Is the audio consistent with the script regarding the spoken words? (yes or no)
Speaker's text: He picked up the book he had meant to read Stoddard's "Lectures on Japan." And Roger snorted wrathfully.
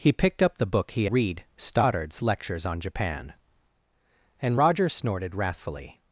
no